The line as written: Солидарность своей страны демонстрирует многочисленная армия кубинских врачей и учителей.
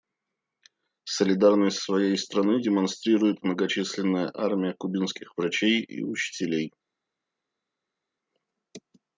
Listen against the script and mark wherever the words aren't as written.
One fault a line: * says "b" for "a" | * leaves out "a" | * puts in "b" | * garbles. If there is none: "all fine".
all fine